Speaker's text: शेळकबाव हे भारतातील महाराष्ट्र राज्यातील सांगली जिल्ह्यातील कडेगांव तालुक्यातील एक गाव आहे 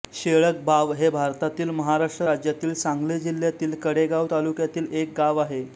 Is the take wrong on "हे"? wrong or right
right